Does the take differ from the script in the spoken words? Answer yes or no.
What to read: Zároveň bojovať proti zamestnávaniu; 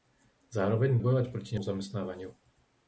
no